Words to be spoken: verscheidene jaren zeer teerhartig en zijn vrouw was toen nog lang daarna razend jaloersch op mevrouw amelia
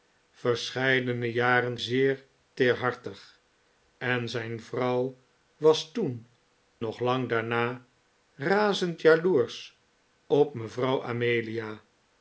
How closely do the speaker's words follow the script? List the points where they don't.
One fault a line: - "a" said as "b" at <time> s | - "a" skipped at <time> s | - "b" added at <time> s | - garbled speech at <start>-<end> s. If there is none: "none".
none